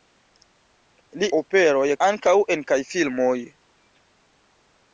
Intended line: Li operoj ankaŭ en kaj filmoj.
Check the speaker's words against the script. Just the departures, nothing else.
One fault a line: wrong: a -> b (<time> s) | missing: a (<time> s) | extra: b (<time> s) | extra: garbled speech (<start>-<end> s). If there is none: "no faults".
no faults